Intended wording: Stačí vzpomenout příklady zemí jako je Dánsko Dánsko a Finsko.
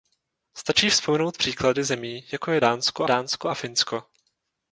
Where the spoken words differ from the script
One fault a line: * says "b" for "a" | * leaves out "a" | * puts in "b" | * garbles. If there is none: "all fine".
all fine